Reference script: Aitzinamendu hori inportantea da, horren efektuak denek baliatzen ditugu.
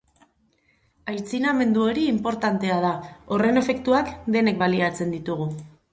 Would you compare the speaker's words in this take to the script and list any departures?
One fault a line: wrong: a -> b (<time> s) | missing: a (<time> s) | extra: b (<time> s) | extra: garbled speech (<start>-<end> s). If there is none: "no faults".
no faults